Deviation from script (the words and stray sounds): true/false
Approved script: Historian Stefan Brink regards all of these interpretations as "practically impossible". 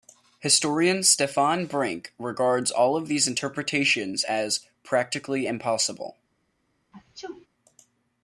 true